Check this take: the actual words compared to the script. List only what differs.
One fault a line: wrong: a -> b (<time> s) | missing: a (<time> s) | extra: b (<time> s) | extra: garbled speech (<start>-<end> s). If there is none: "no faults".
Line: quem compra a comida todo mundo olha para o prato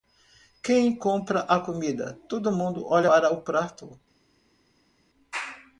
no faults